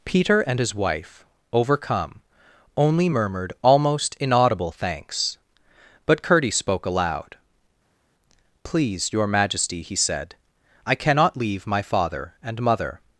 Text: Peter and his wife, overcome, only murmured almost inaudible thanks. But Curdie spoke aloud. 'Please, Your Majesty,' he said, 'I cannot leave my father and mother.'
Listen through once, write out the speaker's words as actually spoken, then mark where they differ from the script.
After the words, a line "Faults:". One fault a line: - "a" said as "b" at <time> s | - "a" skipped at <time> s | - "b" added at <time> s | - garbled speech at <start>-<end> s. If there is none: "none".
Peter and his wife, overcome, only murmured almost inaudible thanks. But Curdie spoke aloud. 'Please, Your Majesty,' he said, 'I cannot leave my father and mother.'
Faults:
none